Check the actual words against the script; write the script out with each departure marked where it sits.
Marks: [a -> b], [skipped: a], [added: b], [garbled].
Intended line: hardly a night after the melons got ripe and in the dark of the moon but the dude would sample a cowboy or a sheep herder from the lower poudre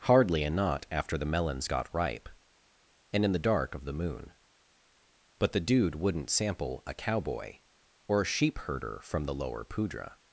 hardly a [night -> knot] after the melons got ripe and in the dark of the moon but the dude [would -> wouldn't] sample a cowboy or a sheep herder from the lower poudre